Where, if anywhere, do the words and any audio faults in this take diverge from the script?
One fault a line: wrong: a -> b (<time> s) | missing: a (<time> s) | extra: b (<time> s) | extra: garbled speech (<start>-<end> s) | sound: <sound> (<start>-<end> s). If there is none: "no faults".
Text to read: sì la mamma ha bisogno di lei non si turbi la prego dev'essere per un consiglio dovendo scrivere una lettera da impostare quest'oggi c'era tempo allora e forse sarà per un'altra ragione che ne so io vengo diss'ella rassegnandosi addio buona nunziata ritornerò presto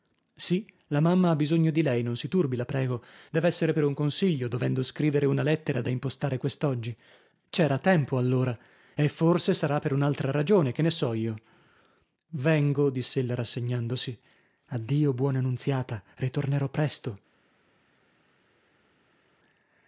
no faults